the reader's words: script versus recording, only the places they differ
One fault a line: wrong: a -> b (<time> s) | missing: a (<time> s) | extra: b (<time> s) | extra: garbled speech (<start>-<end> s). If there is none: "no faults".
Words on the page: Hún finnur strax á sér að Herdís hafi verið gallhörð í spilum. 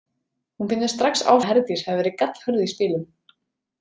missing: sér (1.3 s)